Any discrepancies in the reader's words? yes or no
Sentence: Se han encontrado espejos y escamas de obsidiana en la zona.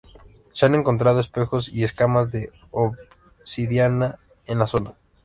no